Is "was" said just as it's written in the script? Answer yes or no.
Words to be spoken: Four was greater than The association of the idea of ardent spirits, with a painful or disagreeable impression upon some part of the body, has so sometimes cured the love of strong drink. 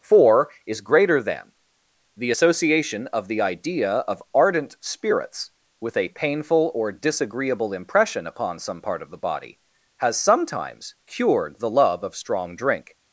no